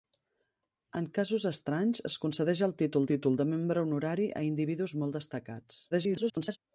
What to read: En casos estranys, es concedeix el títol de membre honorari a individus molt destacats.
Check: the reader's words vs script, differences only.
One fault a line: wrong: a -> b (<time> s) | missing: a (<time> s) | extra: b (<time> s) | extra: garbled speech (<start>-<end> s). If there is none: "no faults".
extra: títol (3.1 s)
extra: garbled speech (5.9-6.6 s)